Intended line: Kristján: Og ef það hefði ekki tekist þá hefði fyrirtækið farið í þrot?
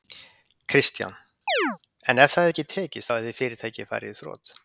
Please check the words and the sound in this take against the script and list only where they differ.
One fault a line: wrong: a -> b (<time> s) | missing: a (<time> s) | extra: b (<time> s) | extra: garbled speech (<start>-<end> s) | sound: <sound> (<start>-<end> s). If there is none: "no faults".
sound: chirp (1.5-1.8 s)
wrong: Og -> En (2.1 s)